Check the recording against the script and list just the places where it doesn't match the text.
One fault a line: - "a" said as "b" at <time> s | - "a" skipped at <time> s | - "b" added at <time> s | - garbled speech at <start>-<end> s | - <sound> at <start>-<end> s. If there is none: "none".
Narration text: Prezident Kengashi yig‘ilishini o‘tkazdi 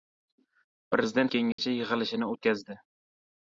- dropout at 1.5-1.6 s